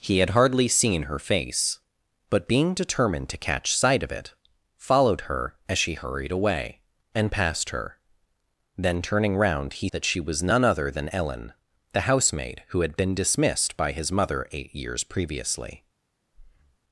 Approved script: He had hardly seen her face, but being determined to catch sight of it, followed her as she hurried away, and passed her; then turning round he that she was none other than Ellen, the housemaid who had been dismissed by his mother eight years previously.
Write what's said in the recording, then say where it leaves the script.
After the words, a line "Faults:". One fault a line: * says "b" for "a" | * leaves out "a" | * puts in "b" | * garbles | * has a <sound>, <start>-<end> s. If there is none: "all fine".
He had hardly seen her face, but being determined to catch sight of it, followed her as she hurried away, and passed her; then turning round he that she was none other than Ellen, the housemaid who had been dismissed by his mother eight years previously.
Faults:
* has a breath, 16.3-16.8 s